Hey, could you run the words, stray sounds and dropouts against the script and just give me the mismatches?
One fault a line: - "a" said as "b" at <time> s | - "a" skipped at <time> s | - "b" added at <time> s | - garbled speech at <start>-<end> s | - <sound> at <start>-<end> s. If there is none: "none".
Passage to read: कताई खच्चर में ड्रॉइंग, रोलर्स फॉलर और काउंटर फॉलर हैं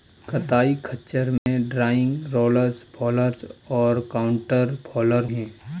- dropout at 1.4-1.5 s